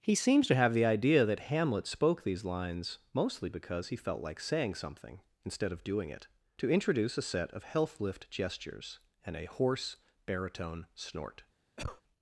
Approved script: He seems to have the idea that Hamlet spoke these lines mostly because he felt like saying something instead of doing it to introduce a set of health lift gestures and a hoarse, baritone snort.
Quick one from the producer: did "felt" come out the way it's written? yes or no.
yes